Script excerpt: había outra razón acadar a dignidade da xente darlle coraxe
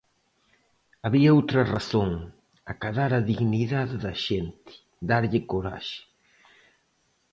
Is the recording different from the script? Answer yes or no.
no